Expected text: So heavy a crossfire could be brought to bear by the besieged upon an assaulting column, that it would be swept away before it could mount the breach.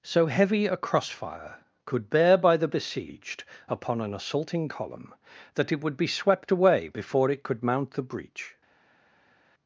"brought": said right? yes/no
no